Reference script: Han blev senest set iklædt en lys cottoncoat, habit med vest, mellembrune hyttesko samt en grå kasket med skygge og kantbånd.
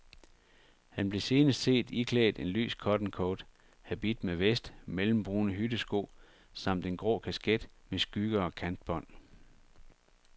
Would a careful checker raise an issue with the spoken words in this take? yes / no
no